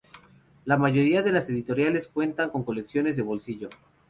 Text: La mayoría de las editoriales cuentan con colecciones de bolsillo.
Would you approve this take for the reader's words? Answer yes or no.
yes